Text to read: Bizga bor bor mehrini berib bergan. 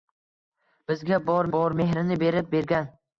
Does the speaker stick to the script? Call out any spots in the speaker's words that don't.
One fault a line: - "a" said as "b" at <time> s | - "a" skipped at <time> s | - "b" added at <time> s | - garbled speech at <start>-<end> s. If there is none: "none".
none